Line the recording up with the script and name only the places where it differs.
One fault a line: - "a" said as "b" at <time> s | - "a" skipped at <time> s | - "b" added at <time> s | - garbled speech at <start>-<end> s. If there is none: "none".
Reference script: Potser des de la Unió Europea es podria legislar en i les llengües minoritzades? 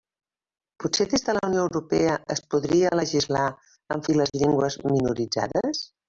none